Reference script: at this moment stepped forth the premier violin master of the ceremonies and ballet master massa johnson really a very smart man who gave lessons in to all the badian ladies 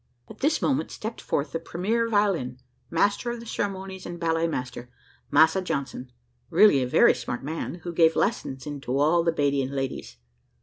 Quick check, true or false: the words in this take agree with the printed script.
true